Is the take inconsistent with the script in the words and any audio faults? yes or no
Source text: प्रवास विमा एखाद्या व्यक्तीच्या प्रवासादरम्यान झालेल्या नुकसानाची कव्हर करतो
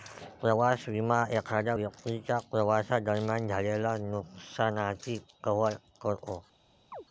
yes